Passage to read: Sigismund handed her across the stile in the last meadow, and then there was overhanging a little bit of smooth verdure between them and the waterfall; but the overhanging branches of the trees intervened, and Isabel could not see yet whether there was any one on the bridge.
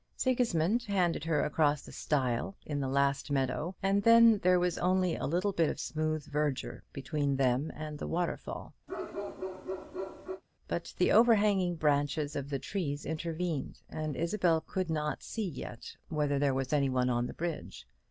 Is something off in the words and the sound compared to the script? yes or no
yes